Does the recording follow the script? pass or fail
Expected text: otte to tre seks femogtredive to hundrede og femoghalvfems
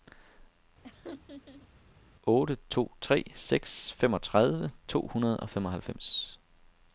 pass